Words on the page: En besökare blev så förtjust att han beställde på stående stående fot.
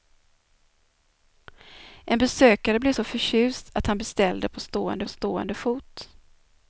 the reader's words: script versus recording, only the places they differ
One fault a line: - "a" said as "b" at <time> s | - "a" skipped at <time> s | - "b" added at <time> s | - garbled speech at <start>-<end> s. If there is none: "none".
none